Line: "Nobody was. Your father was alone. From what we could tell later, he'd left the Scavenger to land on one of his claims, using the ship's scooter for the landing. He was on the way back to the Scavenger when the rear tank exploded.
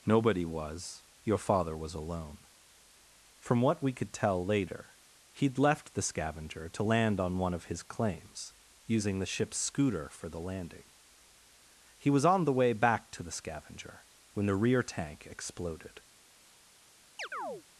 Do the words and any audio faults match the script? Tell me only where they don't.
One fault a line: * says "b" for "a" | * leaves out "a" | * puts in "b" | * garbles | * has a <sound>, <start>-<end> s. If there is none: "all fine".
* has a chirp, 17.2-17.6 s